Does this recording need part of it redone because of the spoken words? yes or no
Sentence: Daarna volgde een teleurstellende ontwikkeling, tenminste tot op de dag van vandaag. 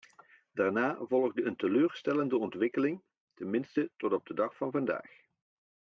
no